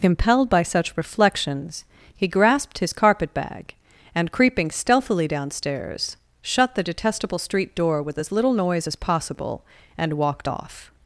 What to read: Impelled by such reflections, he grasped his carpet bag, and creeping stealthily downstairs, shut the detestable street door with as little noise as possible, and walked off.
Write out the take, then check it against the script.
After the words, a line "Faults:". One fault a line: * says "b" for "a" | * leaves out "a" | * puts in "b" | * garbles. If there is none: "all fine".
Impelled by such reflections, he grasped his carpet bag, and creeping stealthily downstairs, shut the detestable street door with as little noise as possible, and walked off.
Faults:
all fine